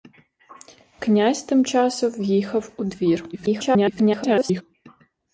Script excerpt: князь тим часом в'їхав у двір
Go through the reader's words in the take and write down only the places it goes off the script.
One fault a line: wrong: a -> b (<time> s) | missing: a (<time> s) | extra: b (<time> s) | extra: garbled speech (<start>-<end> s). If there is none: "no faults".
extra: garbled speech (3.3-4.6 s)